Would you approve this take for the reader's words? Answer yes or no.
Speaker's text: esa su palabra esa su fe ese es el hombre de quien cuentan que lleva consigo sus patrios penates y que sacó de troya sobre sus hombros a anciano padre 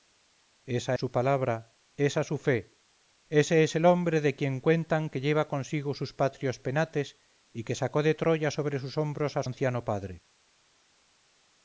yes